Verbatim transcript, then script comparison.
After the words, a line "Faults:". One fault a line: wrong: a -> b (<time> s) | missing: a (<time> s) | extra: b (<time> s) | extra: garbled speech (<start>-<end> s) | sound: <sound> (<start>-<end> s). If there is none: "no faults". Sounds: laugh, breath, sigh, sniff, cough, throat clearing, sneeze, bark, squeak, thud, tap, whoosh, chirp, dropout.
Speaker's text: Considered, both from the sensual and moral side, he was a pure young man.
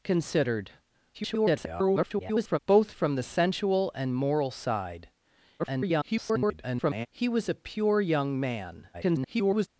Considered, [garbled] both from the sensual and moral side, [garbled] he was a pure young man. [garbled]
Faults:
extra: garbled speech (1.1-2.6 s)
extra: garbled speech (5.6-7.1 s)
extra: garbled speech (8.9-9.7 s)